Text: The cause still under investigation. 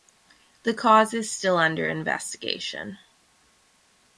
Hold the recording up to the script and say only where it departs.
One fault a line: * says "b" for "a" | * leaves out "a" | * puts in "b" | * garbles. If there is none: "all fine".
* puts in "is"